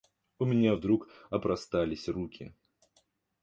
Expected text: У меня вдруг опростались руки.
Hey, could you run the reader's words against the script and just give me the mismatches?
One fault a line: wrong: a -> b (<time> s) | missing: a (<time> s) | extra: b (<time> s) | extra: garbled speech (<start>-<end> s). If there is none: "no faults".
no faults